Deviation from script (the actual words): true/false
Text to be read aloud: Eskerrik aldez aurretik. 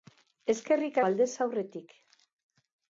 false